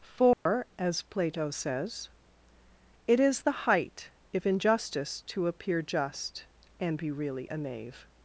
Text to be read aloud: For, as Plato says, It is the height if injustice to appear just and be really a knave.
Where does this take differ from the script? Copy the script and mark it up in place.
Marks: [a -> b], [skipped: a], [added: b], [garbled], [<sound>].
For, [dropout] as Plato says, It is the height if injustice to appear just and be really a knave.